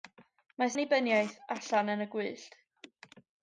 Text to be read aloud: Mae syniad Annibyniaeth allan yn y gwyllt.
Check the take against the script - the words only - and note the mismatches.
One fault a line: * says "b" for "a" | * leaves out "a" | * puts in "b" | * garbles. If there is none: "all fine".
* leaves out "syniad"